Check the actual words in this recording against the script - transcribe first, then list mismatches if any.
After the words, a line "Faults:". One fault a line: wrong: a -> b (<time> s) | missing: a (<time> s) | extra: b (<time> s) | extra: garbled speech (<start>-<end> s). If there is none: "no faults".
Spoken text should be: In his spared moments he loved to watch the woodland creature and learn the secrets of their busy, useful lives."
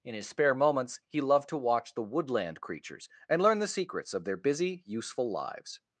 In his spare moments he loved to watch the woodland creatures and learn the secrets of their busy, useful lives."
Faults:
wrong: spared -> spare (0.3 s)
wrong: creature -> creatures (2.6 s)